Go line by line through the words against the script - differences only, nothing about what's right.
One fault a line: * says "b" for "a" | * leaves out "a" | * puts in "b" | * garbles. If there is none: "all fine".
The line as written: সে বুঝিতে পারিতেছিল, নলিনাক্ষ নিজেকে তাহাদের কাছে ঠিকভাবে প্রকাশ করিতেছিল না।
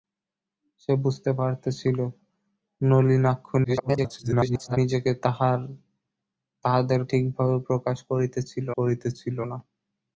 * garbles
* leaves out "কাছে"
* puts in "করিতেছিল"